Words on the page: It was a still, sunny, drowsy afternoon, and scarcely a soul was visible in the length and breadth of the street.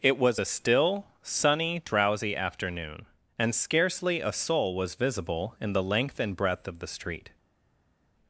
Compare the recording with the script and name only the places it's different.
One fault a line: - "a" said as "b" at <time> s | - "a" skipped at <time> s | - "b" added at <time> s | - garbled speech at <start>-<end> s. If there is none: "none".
none